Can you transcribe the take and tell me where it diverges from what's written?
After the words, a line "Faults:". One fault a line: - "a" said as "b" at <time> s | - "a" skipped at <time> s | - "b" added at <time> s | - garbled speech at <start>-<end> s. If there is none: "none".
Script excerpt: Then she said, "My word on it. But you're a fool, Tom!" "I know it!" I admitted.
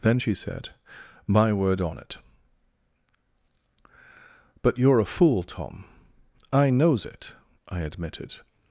Then she said, "My word on it. But you're a fool, Tom!" "I knows it!" I admitted.
Faults:
- "know" said as "knows" at 6.7 s